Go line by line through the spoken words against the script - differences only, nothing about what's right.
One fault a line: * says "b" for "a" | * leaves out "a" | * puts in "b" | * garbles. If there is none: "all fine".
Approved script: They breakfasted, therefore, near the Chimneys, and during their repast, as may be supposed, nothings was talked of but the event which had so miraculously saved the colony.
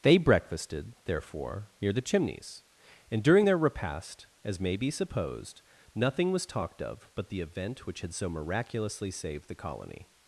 * says "nothing" for "nothings"